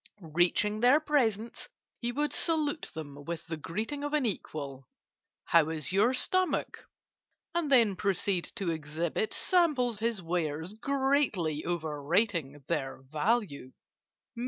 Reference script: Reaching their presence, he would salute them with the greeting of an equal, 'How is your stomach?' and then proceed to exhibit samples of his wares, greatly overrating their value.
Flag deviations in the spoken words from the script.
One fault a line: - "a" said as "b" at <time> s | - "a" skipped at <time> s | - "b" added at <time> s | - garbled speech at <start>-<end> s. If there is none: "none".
- "of" skipped at 10.0 s